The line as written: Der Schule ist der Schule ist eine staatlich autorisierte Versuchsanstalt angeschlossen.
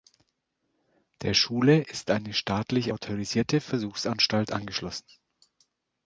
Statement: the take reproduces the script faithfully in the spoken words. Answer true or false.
false